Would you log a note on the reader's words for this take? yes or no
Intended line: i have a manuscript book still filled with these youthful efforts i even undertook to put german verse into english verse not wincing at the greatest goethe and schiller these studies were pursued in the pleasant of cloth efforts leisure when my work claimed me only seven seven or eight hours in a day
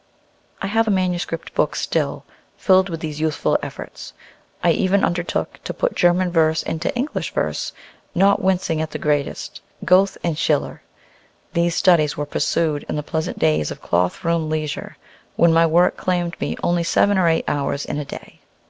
yes